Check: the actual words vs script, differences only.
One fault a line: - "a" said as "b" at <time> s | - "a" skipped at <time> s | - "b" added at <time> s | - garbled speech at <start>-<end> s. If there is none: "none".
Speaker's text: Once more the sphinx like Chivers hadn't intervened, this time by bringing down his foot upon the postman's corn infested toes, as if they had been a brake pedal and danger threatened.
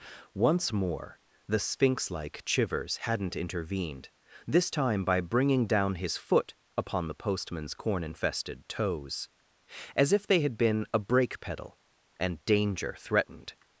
none